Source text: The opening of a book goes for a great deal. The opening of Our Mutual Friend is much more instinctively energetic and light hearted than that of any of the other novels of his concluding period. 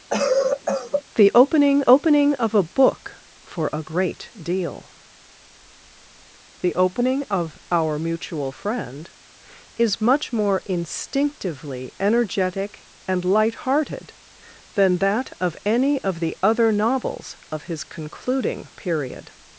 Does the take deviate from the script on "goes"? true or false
true